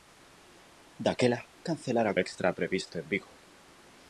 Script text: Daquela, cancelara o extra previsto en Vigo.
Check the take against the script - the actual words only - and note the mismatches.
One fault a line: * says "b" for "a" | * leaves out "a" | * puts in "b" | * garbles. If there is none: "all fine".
all fine